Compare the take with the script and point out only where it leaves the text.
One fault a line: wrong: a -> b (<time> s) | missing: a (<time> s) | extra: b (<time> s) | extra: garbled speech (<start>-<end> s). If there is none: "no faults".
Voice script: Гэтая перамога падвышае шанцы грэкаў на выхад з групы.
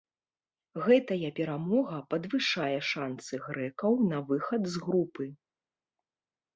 no faults